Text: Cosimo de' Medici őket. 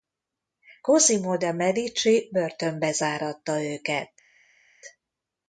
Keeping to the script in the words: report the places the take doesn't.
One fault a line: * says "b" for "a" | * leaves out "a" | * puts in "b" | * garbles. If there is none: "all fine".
* puts in "börtönbe záratta"